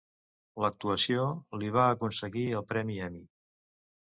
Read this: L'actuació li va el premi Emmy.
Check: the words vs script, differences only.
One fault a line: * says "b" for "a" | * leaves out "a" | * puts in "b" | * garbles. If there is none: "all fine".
* puts in "aconseguir"